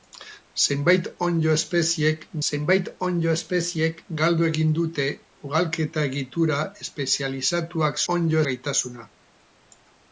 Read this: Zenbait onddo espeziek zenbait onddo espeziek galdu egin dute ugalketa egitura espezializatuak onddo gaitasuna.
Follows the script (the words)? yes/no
yes